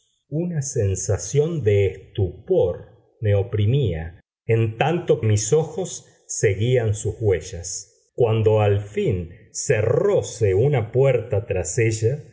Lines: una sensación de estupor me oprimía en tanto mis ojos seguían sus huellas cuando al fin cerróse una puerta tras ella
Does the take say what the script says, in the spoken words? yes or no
yes